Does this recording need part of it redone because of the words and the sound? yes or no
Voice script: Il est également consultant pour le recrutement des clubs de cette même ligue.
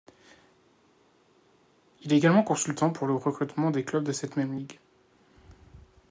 no